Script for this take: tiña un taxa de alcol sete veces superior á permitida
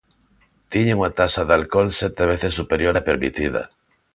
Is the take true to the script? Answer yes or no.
no